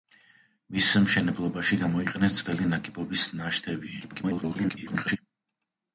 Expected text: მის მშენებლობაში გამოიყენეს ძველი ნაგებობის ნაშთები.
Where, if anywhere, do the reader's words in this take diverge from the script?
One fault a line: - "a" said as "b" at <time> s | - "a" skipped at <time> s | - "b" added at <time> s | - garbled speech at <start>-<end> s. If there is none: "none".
- garbled speech at 4.0-5.2 s